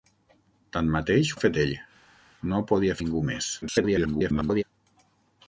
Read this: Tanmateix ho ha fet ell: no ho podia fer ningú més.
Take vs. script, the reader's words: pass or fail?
fail